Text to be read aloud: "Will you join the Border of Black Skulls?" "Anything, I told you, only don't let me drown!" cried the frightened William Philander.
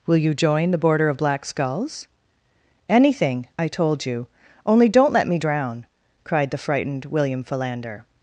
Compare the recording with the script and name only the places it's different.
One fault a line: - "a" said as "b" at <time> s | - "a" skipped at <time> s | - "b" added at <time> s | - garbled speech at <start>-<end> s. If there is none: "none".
none